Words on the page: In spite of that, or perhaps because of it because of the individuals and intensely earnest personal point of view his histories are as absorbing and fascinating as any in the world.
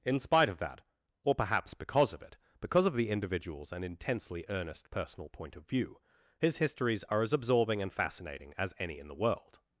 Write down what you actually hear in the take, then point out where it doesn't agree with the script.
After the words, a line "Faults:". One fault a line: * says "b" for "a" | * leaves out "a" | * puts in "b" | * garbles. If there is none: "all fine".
In spite of that, or perhaps because of it because of the individuals and intensely earnest personal point of view his histories are as absorbing and fascinating as any in the world.
Faults:
all fine